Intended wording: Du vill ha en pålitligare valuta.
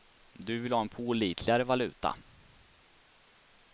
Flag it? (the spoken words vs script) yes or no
no